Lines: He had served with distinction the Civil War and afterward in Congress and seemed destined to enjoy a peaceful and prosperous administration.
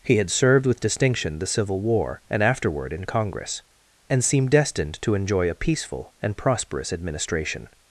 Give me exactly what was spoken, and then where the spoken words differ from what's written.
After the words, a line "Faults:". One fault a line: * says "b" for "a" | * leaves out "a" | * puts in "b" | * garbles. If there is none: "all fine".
He had served with distinction the Civil War and afterward in Congress and seemed destined to enjoy a peaceful and prosperous administration.
Faults:
all fine